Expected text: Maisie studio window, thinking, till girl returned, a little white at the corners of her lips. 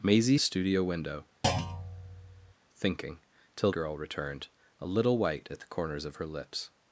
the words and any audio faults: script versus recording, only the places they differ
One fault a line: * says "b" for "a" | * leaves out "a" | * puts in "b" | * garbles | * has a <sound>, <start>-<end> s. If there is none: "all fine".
* has a thud, 1.4-2.5 s